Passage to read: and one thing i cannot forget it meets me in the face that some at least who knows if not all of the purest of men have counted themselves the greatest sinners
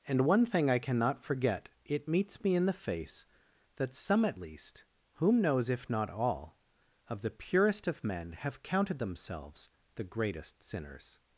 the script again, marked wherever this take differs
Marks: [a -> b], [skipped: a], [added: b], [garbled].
and one thing i cannot forget it meets me in the face that some at least [who -> whom] knows if not all of the purest of men have counted themselves the greatest sinners